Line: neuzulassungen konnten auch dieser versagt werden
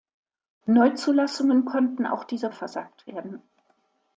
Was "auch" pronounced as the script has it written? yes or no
yes